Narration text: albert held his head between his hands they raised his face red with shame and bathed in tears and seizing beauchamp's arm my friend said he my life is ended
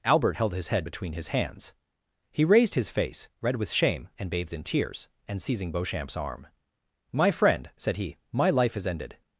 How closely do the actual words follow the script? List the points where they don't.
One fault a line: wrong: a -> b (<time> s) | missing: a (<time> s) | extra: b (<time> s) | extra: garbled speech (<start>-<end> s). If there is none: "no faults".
wrong: they -> he (2.3 s)